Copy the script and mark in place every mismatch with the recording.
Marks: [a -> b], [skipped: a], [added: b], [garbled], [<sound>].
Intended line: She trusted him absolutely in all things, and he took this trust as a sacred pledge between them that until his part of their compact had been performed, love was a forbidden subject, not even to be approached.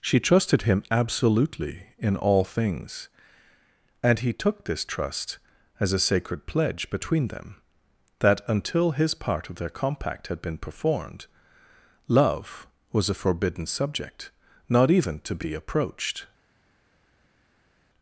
She trusted him absolutely in all things, and he took this trust as a sacred pledge between them that until his part of their compact had been performed, love was a forbidden subject, not even to be approached.